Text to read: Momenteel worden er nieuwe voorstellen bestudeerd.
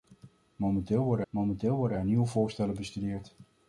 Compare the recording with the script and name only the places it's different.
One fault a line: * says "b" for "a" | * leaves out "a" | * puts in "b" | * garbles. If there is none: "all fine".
* puts in "momenteel worden"